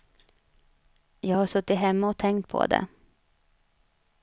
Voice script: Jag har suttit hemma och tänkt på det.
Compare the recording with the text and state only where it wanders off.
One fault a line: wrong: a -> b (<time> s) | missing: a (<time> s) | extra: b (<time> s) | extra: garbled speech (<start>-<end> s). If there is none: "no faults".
no faults